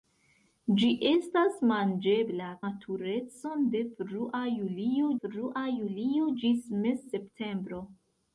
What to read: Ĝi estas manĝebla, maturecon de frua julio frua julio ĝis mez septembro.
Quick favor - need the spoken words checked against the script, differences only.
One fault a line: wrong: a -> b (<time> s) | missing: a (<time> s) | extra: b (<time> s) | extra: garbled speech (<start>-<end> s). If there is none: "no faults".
no faults